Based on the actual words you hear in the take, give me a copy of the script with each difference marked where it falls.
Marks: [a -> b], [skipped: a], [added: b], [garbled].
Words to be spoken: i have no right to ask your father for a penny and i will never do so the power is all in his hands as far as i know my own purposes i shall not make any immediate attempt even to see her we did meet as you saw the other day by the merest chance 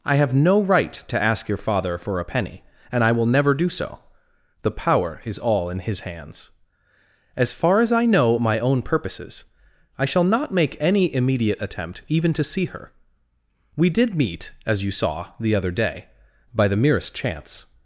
i have no right to ask your father for a penny and i will never do so the power is all in his hands as far as i know my own purposes i shall not make any immediate attempt even to see her we did meet as you saw the other day by the merest chance